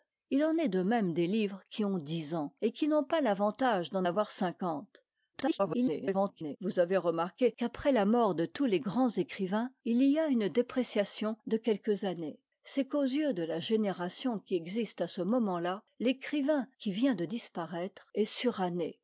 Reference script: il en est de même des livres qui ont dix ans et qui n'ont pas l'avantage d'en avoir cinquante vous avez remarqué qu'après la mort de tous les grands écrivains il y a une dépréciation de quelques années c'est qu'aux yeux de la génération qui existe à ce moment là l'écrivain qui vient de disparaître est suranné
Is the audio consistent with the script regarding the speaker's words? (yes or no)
no